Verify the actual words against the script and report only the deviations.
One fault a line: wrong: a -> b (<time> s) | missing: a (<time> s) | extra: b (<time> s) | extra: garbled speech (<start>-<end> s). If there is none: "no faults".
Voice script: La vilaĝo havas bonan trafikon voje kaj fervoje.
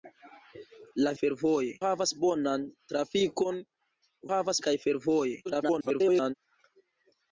wrong: vilaĝo -> fervoje (1.2 s)
wrong: voje -> havas (4.3 s)
extra: garbled speech (5.4-6.3 s)